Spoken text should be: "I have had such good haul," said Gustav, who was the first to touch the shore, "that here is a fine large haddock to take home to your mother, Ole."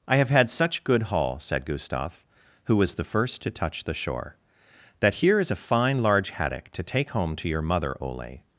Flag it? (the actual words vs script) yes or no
no